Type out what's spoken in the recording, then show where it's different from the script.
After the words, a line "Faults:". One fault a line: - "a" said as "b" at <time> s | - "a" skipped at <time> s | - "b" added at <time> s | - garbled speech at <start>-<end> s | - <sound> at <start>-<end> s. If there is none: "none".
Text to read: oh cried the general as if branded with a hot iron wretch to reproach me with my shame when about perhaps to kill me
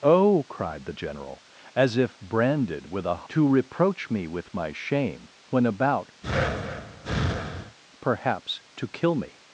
oh cried the general as if branded with a to reproach me with my shame when about perhaps to kill me
Faults:
- "hot iron wretch" skipped at 3.3 s
- breath at 6.2-7.8 s